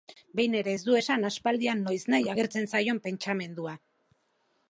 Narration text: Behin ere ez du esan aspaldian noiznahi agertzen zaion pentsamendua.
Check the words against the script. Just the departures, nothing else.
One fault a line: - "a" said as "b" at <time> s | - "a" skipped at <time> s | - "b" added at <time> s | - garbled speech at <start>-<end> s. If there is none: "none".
none